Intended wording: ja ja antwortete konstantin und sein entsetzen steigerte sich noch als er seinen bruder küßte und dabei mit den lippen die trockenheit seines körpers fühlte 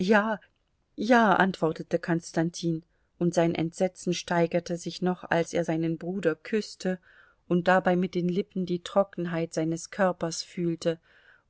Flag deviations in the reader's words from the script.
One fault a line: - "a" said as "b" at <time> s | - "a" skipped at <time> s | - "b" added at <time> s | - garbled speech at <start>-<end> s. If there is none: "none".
none